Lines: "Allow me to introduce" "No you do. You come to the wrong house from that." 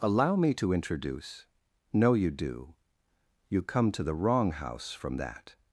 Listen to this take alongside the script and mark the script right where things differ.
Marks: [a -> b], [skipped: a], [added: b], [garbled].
"Allow me to introduce" "No you do. You come to the wrong house from that."